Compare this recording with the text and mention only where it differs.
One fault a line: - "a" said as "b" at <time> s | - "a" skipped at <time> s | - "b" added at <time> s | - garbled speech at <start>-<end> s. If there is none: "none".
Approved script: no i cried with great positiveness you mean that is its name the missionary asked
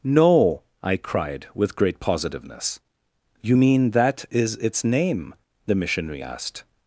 none